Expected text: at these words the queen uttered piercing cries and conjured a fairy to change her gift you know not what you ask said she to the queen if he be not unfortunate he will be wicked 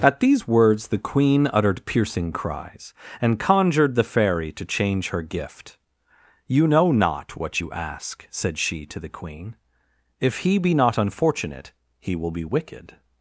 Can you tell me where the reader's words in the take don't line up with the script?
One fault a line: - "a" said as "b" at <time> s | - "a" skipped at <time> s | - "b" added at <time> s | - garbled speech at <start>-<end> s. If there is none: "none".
- "a" said as "the" at 3.9 s